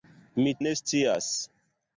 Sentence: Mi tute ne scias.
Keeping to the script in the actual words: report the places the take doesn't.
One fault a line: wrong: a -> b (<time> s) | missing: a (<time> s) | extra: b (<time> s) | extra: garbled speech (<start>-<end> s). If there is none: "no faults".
missing: tute (0.5 s)